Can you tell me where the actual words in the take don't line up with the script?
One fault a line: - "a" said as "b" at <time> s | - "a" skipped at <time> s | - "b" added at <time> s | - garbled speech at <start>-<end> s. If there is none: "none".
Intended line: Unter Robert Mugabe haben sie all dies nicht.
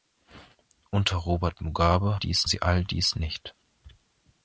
- "haben" said as "dies" at 2.1 s